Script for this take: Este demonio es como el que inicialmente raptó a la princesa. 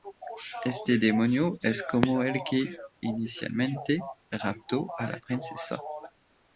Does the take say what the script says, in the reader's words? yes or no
yes